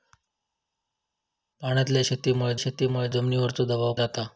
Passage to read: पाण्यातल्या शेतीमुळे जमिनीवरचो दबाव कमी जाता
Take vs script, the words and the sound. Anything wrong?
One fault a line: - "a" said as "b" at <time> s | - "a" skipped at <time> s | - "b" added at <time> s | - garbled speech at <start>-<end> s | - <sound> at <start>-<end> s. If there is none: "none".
- "शेतीमुळे" added at 2.6 s
- "कमी" skipped at 3.9 s